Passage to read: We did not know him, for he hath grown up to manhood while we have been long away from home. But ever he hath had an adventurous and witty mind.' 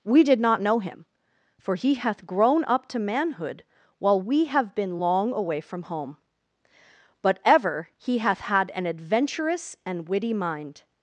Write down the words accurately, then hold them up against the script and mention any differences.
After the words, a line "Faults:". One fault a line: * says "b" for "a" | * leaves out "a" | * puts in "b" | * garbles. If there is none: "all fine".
We did not know him, for he hath grown up to manhood while we have been long away from home. But ever he hath had an adventurous and witty mind.'
Faults:
all fine